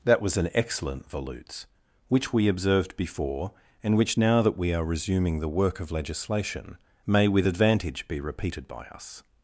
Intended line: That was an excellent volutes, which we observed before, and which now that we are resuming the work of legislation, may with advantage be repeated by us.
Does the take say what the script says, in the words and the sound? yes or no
yes